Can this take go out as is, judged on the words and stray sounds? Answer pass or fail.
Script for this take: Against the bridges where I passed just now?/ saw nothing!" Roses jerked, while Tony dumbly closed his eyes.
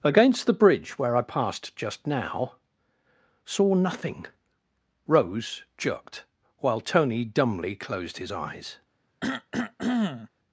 fail